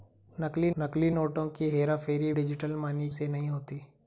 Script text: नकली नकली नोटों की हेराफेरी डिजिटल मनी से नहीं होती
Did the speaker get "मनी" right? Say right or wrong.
right